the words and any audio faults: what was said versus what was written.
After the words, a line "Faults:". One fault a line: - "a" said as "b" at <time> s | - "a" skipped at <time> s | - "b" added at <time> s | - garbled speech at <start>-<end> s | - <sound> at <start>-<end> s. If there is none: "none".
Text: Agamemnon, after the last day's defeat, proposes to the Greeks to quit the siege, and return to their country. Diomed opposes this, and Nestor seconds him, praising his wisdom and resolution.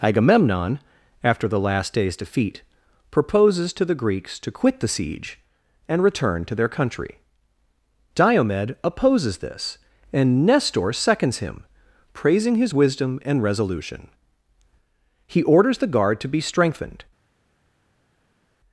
Agamemnon, after the last day's defeat, proposes to the Greeks to quit the siege, and return to their country. Diomed opposes this, and Nestor seconds him, praising his wisdom and resolution. He orders the guard to be strengthened
Faults:
- "He orders the guard to be strengthened" added at 15.3 s